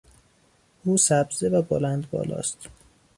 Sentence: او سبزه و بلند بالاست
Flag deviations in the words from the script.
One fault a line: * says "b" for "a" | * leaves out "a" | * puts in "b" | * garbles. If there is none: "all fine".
all fine